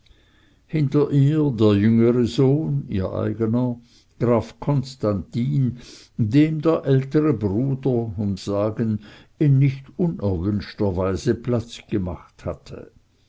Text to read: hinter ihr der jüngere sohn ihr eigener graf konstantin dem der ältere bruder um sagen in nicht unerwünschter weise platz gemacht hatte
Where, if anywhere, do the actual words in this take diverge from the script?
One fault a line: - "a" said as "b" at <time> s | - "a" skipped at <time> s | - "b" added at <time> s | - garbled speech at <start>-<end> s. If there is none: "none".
none